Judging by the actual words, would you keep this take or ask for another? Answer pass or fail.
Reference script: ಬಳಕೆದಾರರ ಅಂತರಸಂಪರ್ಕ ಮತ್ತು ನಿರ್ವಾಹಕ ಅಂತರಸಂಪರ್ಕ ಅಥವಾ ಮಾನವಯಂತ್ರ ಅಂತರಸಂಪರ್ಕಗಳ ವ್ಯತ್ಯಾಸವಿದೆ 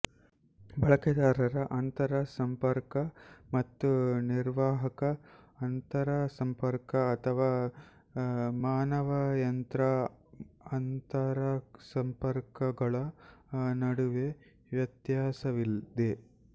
fail